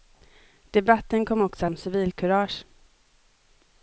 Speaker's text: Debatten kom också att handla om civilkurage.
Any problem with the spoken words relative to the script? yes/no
yes